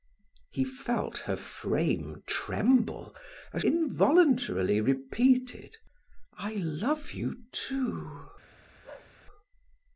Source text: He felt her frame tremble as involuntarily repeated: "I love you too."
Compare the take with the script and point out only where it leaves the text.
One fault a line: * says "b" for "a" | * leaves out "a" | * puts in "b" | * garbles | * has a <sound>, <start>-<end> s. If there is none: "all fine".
* has a bark, 8.8-9.1 s